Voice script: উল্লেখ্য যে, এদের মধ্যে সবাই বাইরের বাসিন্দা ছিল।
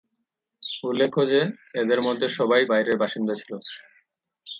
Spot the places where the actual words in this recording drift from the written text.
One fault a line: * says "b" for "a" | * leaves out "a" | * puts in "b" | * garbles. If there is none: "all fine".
all fine